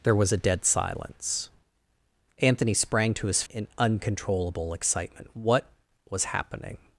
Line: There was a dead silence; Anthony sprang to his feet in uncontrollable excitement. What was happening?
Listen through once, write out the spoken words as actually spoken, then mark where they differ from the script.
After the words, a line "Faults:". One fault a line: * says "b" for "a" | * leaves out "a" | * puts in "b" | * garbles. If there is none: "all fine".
There was a dead silence; Anthony sprang to his in uncontrollable excitement. What was happening?
Faults:
* leaves out "feet"